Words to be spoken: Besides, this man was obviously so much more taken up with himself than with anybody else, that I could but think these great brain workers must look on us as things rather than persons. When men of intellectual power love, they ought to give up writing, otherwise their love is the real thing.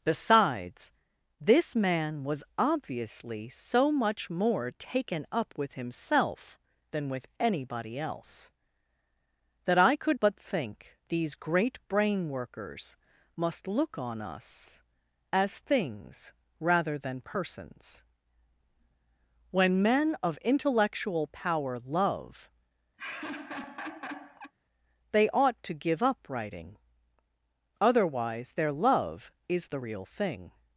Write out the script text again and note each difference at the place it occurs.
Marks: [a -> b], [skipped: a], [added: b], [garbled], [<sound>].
Besides, this man was obviously so much more taken up with himself than with anybody else, that I could but think these great brain workers must look on us as things rather than persons. When men of intellectual power love, [laugh] they ought to give up writing, otherwise their love is the real thing.